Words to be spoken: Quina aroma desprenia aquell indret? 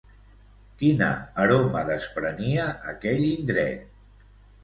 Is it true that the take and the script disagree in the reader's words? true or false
false